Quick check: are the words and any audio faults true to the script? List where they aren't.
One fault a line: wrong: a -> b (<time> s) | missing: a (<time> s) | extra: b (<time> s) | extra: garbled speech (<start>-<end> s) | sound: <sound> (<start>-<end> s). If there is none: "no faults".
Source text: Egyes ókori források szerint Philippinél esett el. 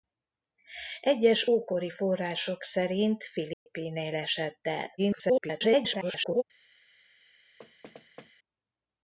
sound: dropout (3.5-3.7 s)
extra: garbled speech (5.0-6.4 s)
sound: thud (7.6-8.3 s)